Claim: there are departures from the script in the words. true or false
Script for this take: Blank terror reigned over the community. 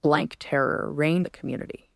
true